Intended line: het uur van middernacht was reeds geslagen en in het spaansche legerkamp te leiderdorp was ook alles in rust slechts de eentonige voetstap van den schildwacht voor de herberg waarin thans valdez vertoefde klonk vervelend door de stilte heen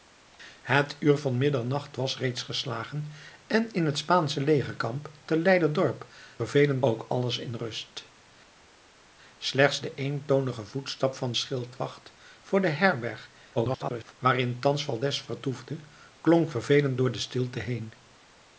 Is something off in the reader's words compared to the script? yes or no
yes